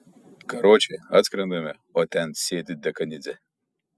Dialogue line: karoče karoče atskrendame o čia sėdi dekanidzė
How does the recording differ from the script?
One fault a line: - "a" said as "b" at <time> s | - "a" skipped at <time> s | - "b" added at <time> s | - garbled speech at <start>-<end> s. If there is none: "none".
- "karoče" skipped at 1.0 s
- "čia" said as "ten" at 2.2 s